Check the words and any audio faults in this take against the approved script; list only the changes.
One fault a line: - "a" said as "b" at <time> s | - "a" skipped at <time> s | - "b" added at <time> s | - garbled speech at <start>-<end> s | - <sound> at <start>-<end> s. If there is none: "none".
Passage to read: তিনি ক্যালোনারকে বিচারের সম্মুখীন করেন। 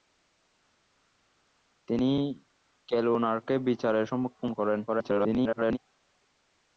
- garbled speech at 4.9-5.8 s